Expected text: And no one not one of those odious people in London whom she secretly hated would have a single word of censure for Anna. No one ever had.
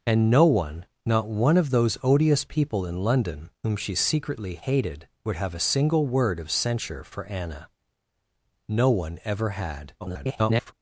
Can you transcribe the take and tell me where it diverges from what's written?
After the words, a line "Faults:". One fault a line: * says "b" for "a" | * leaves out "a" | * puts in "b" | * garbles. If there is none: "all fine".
And no one not one of those odious people in London whom she secretly hated would have a single word of censure for Anna. No one ever had. [garbled]
Faults:
* garbles